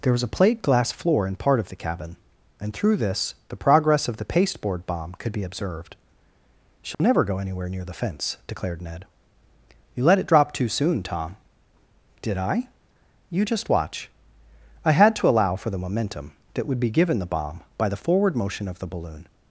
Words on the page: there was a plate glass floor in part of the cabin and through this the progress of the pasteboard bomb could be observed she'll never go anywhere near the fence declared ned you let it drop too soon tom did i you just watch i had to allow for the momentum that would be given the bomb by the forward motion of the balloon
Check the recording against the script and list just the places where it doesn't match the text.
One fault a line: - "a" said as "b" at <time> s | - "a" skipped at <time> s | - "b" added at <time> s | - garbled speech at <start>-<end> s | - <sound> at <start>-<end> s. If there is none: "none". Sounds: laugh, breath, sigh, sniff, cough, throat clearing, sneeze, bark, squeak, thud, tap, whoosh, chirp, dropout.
- dropout at 6.9-7.0 s